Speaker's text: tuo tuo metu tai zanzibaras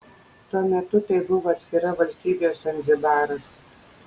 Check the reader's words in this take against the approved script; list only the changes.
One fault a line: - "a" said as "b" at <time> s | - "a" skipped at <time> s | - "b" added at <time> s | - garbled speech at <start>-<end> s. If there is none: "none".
- "tuo" skipped at 0.6 s
- "buvo atskira valstybė" added at 1.3 s